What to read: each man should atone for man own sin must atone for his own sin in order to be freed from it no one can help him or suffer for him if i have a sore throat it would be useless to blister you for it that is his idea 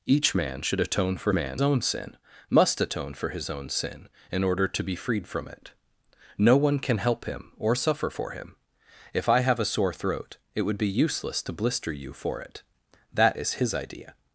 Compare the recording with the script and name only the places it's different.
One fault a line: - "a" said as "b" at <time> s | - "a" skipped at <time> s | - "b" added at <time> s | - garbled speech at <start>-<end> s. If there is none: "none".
none